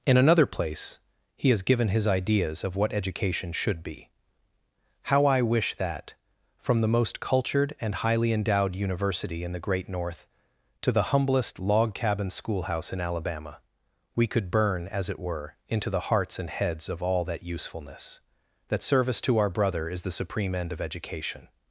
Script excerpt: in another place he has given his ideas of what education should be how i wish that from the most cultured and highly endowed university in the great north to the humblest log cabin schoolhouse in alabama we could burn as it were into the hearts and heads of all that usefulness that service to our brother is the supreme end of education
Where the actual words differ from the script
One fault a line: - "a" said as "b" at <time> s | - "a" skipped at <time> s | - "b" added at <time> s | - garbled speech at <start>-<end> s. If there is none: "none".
none